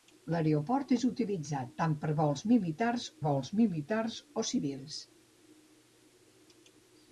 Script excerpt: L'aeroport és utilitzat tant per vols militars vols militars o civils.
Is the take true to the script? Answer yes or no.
yes